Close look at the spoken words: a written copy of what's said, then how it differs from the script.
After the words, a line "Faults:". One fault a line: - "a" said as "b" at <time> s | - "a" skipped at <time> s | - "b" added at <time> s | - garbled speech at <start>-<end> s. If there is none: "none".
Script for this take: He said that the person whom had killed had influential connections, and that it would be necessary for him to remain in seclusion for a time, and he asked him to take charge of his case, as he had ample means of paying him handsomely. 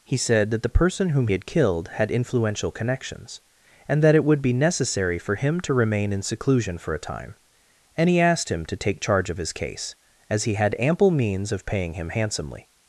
He said that the person whom had killed had influential connections, and that it would be necessary for him to remain in seclusion for a time, and he asked him to take charge of his case, as he had ample means of paying him handsomely.
Faults:
none